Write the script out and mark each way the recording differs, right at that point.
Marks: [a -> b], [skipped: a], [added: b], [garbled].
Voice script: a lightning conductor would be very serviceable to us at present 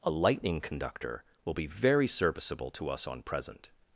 a lightning conductor [would -> will] be very serviceable to us [at -> on] present